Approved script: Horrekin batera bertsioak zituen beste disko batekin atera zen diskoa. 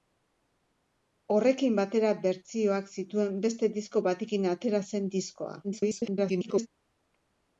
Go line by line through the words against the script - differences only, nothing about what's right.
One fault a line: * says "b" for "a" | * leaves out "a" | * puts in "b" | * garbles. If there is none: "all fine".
* garbles